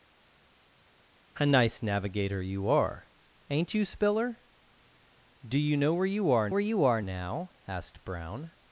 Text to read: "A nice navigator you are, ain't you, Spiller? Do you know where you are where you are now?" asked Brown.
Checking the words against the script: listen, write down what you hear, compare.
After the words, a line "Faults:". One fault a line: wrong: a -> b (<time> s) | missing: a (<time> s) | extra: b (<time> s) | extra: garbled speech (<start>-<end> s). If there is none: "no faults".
"A nice navigator you are, ain't you, Spiller? Do you know where you are where you are now?" asked Brown.
Faults:
no faults